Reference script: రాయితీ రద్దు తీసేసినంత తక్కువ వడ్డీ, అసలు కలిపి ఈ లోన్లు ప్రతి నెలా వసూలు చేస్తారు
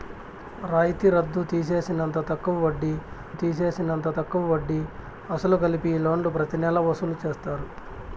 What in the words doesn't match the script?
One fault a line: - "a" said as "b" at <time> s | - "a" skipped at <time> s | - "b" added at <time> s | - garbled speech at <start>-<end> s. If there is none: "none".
- "తీసేసినంత తక్కువ వడ్డీ" added at 3.3 s